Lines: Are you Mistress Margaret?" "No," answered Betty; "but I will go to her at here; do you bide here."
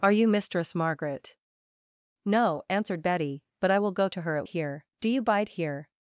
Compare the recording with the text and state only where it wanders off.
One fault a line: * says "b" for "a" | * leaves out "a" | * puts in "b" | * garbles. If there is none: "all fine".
all fine